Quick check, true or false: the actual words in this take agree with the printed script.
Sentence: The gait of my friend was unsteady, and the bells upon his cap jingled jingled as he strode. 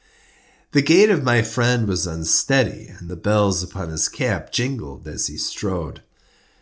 false